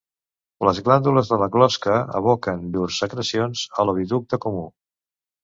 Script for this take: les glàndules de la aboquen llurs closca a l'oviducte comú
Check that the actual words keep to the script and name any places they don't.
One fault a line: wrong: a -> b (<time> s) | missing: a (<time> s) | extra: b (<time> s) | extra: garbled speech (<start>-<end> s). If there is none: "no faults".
extra: closca (1.6 s)
wrong: closca -> secrecions (3.1 s)